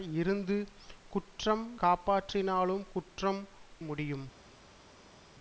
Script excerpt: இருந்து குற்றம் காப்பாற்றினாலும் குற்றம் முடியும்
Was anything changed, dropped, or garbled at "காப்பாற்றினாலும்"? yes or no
no